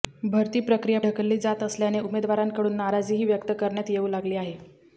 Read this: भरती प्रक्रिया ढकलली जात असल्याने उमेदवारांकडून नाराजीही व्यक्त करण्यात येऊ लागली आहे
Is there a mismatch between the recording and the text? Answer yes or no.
no